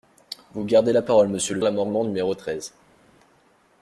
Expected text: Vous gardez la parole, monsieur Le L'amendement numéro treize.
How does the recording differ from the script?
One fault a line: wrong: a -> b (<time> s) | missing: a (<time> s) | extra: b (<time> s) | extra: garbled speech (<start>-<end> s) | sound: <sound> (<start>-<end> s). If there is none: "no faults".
no faults